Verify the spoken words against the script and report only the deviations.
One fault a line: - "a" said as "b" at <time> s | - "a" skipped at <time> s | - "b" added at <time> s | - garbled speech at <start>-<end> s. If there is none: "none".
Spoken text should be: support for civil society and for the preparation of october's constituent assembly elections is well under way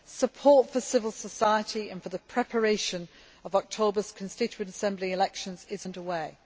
- "well" skipped at 5.9 s